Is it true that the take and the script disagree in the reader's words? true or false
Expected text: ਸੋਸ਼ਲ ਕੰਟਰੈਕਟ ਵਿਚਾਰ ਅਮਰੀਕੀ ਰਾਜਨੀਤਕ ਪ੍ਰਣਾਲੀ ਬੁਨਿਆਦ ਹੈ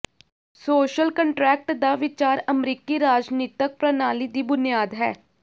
true